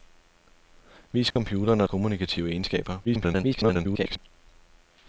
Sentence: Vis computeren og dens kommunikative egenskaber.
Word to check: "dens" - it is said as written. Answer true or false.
false